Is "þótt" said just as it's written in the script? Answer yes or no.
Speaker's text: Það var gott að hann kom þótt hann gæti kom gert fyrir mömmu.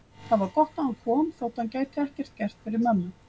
yes